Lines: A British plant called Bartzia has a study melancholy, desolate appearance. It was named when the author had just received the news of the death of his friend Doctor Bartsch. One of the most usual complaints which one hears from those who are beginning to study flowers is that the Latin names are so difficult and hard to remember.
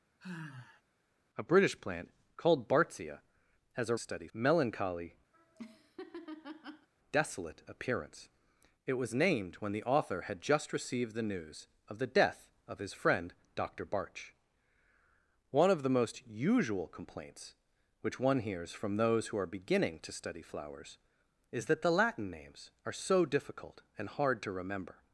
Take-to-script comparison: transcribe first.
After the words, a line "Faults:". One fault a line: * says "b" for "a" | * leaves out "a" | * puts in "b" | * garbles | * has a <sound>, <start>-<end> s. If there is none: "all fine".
A British plant called Bartzia has a study melancholy, desolate appearance. It was named when the author had just received the news of the death of his friend Doctor Bartsch. One of the most usual complaints which one hears from those who are beginning to study flowers is that the Latin names are so difficult and hard to remember.
Faults:
* has a sigh, 0.2-0.8 s
* has a laugh, 5.3-6.9 s